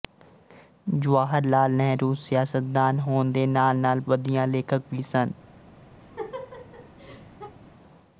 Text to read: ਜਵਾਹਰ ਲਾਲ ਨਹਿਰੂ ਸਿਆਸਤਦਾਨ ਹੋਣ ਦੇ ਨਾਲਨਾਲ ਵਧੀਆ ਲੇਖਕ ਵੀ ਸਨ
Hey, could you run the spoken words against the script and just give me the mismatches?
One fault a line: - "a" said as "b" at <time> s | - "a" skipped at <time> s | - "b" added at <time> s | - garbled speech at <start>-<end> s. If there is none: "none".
none